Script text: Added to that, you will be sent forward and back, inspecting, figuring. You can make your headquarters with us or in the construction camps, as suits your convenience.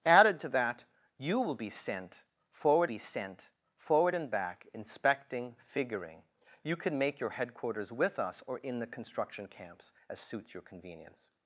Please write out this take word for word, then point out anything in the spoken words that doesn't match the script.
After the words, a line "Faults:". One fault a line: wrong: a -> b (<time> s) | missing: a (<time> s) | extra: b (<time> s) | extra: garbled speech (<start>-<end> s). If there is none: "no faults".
Added to that, you will be sent forward be sent forward and back, inspecting, figuring. You can make your headquarters with us or in the construction camps, as suits your convenience.
Faults:
extra: be sent forward (2.8 s)